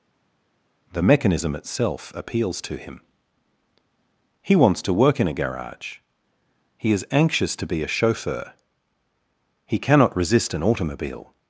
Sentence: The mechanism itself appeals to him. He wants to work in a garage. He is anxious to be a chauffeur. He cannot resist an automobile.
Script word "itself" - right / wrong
right